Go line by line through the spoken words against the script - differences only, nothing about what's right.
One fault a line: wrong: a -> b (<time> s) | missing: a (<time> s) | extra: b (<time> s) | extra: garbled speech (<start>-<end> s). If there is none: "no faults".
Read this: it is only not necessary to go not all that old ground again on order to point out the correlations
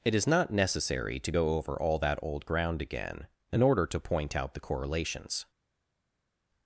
missing: only (0.2 s)
wrong: not -> over (1.6 s)
wrong: on -> in (3.5 s)